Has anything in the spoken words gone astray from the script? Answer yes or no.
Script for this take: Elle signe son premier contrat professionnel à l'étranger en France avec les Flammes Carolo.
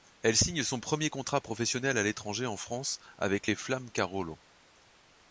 no